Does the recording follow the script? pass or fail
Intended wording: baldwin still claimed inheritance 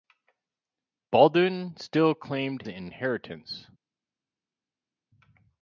pass